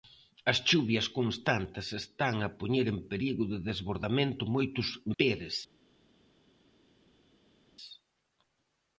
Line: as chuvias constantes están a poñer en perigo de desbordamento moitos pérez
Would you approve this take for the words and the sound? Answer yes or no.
yes